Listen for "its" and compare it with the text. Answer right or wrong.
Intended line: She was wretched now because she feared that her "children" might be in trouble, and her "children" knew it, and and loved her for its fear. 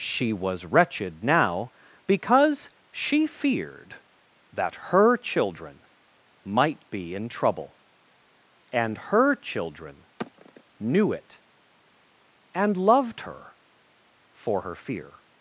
wrong